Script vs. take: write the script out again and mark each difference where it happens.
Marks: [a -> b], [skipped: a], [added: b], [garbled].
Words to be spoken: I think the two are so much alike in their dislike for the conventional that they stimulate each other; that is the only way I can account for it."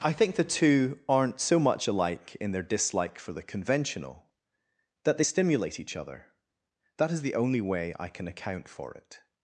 I think the two [are -> aren't] so much alike in their dislike for the conventional that they stimulate each other; that is the only way I can account for it."